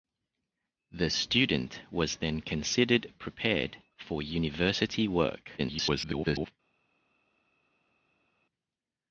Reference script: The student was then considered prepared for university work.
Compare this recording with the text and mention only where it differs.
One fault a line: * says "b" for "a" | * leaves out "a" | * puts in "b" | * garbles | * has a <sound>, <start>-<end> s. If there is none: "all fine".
* garbles